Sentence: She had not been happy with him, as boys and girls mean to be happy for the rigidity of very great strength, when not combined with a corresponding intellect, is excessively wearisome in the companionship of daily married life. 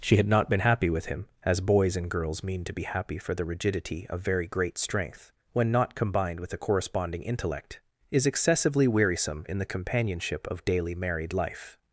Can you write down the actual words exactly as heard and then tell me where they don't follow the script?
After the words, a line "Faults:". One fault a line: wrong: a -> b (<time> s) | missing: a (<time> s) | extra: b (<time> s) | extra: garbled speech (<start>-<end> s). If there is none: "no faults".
She had not been happy with him, as boys and girls mean to be happy for the rigidity of very great strength, when not combined with a corresponding intellect, is excessively wearisome in the companionship of daily married life.
Faults:
no faults